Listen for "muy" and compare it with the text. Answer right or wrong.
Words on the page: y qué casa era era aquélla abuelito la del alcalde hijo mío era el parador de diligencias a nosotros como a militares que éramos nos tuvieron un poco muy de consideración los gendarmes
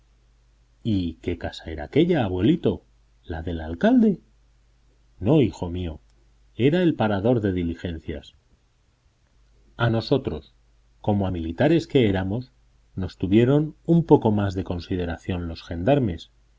wrong